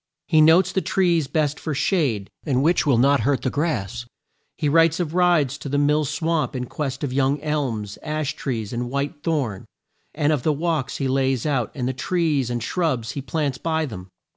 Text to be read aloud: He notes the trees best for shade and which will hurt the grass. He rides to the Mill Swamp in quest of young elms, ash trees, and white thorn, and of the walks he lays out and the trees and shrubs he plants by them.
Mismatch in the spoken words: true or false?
true